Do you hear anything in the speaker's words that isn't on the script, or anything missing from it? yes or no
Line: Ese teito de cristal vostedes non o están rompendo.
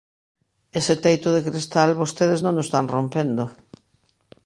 no